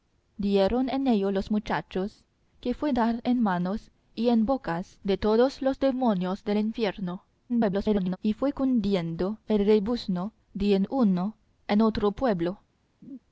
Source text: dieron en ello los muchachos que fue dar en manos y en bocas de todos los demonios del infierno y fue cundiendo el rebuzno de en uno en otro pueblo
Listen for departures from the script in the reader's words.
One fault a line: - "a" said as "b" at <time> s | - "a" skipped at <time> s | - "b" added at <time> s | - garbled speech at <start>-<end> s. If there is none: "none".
- garbled speech at 7.5-8.2 s